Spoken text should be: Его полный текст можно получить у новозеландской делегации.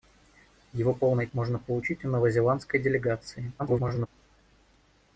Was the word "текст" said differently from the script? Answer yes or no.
yes